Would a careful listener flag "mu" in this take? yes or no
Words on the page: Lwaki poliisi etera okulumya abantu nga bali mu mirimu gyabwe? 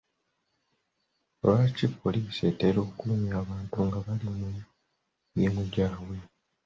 no